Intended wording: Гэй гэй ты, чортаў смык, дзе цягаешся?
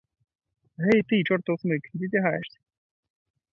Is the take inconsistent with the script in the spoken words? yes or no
yes